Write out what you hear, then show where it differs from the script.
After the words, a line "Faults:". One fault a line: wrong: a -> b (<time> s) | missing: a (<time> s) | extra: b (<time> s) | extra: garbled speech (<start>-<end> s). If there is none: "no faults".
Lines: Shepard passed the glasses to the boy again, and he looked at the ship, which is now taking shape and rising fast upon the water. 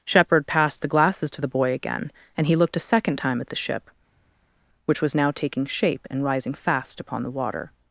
Shepard passed the glasses to the boy again, and he looked a second time at the ship, which was now taking shape and rising fast upon the water.
Faults:
extra: a second time (2.8 s)
wrong: is -> was (5.0 s)